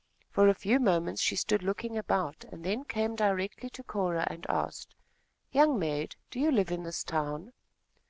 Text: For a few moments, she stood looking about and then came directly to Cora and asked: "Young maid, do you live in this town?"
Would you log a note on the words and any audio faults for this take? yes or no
no